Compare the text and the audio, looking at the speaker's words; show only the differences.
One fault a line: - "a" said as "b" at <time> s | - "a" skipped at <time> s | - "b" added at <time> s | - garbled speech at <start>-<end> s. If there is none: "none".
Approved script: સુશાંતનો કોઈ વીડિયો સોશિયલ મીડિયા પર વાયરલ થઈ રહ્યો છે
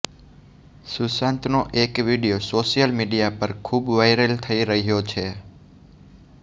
- "કોઈ" said as "એક" at 1.8 s
- "ખૂબ" added at 3.6 s